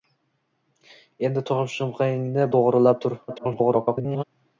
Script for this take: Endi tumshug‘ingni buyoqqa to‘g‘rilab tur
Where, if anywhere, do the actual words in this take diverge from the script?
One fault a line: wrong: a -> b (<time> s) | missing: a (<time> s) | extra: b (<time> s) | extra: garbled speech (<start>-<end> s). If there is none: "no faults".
missing: buyoqqa (2.5 s)
extra: garbled speech (3.3-4.2 s)